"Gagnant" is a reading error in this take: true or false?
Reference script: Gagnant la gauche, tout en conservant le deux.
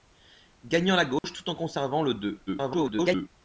false